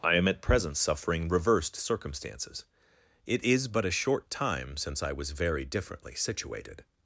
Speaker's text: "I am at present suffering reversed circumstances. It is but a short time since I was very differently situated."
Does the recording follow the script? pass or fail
pass